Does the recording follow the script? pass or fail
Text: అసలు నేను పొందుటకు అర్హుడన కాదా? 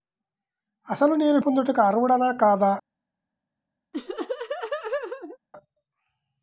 pass